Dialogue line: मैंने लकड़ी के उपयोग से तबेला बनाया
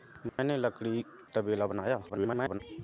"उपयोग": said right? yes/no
no